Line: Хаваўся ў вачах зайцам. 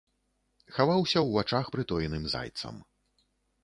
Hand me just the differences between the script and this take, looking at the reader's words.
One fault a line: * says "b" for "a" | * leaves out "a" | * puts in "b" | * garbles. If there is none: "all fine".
* puts in "прытоеным"